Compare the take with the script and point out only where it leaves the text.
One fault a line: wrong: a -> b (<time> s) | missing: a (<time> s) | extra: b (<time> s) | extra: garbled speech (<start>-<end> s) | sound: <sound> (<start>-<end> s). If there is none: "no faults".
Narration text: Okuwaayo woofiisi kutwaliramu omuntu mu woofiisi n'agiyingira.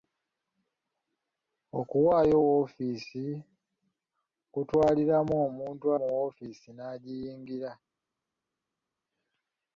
no faults